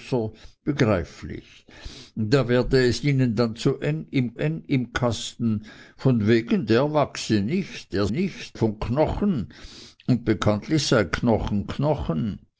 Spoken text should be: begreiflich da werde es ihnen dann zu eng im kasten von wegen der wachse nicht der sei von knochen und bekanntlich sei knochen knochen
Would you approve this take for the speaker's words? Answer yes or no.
no